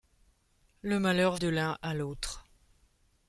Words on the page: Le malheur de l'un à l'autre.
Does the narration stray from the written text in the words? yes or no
no